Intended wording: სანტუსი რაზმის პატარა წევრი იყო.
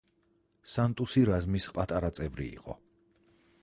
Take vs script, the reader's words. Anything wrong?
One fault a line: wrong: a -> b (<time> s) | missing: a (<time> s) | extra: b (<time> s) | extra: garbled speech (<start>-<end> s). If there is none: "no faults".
no faults